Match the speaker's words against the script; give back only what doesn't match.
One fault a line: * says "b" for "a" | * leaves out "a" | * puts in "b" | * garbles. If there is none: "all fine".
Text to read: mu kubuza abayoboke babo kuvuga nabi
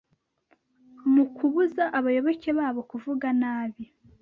all fine